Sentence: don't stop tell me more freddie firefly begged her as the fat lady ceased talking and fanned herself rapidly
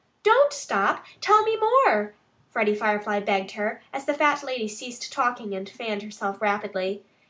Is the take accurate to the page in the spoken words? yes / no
yes